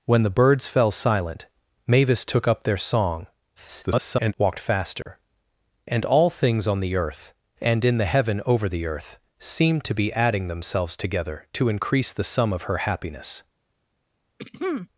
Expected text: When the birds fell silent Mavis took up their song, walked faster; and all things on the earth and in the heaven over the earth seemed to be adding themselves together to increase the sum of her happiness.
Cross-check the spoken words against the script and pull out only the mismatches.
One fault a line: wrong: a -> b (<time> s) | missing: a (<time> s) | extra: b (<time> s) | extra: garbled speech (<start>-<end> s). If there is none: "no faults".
extra: garbled speech (3.6-4.3 s)